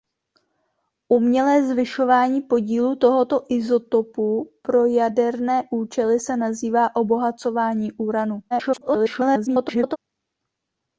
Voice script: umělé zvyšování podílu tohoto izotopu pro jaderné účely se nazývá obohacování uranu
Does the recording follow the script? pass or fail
fail